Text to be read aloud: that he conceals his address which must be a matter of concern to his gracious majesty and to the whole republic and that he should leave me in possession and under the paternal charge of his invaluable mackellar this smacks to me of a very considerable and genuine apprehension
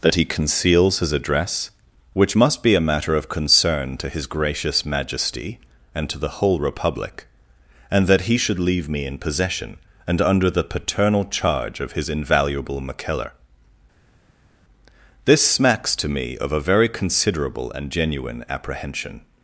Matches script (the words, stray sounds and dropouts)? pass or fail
pass